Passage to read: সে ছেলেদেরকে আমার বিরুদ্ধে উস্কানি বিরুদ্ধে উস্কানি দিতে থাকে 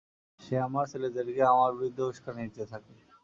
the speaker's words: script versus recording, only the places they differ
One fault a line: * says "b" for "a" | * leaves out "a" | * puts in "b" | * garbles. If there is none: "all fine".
* puts in "আমার"
* leaves out "বিরুদ্ধে উস্কানি"